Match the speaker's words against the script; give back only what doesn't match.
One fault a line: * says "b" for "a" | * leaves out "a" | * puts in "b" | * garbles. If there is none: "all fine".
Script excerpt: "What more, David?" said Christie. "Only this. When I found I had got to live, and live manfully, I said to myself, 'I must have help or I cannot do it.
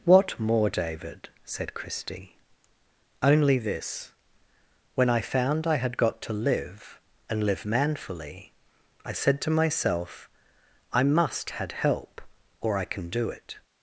* says "had" for "have"
* says "can" for "cannot"